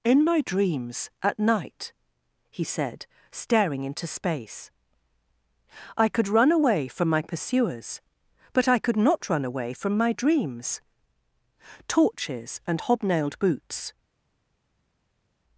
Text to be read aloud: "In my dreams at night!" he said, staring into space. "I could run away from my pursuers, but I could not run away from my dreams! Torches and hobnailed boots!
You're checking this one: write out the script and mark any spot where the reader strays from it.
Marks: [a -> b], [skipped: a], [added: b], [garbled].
"In my dreams at night!" he said, staring into space. "I could run away from my pursuers, but I could not run away from my dreams! Torches and hobnailed boots!